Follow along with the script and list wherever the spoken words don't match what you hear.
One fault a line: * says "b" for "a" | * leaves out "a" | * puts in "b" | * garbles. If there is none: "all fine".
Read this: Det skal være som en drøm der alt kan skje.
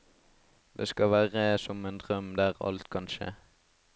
all fine